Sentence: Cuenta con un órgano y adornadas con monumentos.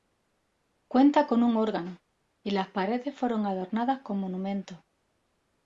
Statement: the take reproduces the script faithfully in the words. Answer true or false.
false